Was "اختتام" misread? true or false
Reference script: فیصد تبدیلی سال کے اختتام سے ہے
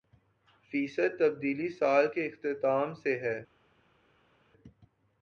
false